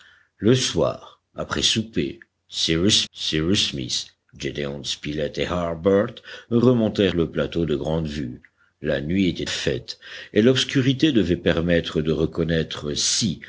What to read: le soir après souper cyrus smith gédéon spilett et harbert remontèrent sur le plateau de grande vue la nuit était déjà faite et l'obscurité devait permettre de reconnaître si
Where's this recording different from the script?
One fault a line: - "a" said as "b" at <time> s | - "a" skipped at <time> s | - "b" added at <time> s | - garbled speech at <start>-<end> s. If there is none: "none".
- "cyrus" added at 3.1 s
- "sur" skipped at 7.1 s
- "déjà" skipped at 9.5 s